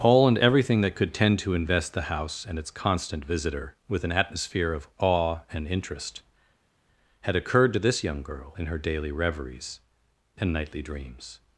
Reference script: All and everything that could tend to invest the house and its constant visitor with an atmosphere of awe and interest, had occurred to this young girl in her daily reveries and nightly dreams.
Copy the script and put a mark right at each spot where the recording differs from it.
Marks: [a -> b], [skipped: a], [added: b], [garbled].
All and everything that could tend to invest the house and its constant visitor with an atmosphere of awe and interest, had occurred to this young girl in her daily reveries and nightly dreams.